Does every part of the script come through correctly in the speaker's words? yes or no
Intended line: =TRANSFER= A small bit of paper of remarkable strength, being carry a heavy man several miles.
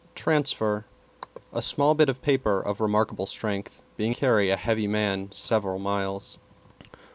yes